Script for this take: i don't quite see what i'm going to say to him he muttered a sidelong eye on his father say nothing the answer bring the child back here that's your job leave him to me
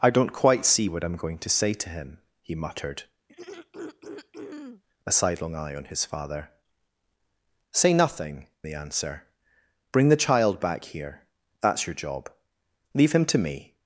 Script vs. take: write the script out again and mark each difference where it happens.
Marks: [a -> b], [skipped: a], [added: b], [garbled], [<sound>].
i don't quite see what i'm going to say to him he muttered [throat clearing] a sidelong eye on his father say nothing the answer bring the child back here that's your job leave him to me